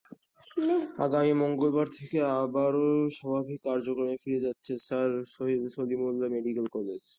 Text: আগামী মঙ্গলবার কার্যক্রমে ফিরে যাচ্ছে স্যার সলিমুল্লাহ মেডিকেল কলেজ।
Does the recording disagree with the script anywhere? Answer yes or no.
yes